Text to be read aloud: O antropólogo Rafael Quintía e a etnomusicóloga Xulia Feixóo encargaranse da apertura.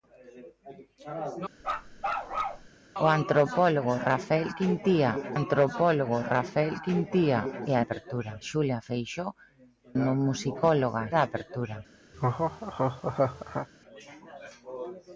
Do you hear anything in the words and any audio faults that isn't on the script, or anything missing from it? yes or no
yes